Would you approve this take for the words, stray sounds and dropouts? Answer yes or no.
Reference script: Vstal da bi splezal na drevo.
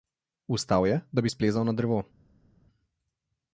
no